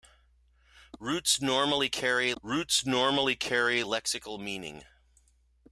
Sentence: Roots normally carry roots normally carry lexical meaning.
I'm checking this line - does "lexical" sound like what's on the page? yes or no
yes